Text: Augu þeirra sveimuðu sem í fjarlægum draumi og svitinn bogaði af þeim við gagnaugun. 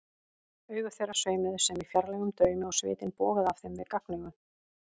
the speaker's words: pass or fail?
pass